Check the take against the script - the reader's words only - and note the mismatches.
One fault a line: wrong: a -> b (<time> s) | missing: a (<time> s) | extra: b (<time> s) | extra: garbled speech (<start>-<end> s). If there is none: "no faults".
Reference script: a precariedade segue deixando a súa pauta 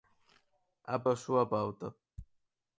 missing: precariedade segue deixando (1.0 s)